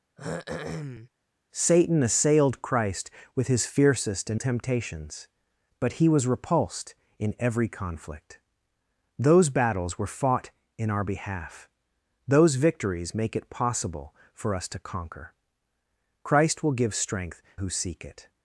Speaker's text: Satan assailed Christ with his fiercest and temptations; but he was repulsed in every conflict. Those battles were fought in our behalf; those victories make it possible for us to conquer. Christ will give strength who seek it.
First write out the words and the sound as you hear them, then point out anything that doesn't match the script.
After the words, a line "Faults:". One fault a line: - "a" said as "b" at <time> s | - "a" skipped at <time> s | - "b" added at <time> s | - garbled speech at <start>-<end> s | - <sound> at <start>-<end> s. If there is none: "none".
Satan assailed Christ with his fiercest and temptations; but he was repulsed in every conflict. Those battles were fought in our behalf; those victories make it possible for us to conquer. Christ will give strength who seek it.
Faults:
- throat clearing at 0.2-1.1 s